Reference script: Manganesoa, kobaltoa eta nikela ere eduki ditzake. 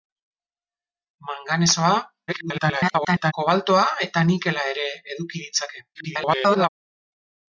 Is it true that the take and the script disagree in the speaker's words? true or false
true